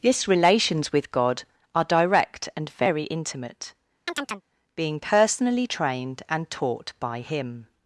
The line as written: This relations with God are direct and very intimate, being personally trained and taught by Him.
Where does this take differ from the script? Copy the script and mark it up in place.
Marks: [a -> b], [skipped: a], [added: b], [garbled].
This relations with God are direct and very intimate, being personally trained and taught by Him.